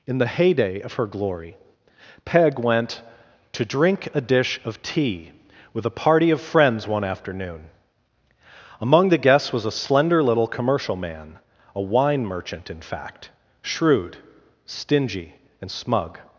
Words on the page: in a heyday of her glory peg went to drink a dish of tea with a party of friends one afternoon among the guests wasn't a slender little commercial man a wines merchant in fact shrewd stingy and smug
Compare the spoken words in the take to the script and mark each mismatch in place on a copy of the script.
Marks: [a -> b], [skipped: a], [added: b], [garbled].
in [a -> the] heyday of her glory peg went to drink a dish of tea with a party of friends one afternoon among the guests [wasn't -> was] a slender little commercial man a [wines -> wine] merchant in fact shrewd stingy and smug